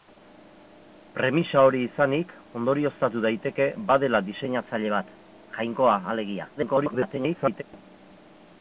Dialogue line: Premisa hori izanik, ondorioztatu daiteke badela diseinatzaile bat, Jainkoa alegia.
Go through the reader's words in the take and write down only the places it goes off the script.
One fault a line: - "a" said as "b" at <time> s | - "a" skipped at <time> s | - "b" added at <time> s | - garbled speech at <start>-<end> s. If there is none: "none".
- garbled speech at 6.6-7.6 s